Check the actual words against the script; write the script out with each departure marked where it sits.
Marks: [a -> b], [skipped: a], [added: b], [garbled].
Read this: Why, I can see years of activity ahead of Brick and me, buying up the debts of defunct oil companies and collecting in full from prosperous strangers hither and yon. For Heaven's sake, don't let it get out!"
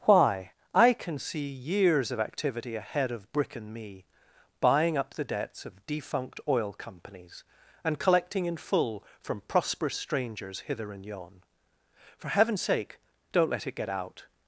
Why, I can see years of activity ahead of Brick and me, buying up the debts of defunct oil companies and collecting in full from prosperous strangers hither and yon. For Heaven's sake, don't let it get out!"